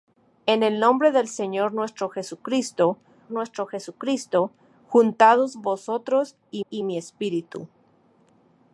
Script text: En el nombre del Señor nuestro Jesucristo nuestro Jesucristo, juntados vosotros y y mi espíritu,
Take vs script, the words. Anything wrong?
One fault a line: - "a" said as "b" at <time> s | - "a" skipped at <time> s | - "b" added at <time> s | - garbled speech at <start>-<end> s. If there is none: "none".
none